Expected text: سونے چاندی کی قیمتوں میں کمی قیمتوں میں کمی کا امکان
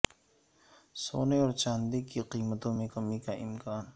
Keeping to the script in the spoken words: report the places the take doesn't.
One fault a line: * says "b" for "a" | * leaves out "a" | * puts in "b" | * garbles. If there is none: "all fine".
* puts in "اور"
* leaves out "قیمتوں میں کمی"